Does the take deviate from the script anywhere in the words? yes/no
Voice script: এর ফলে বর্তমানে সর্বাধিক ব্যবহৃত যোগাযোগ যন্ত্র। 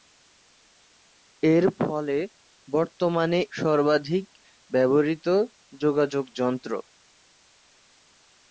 no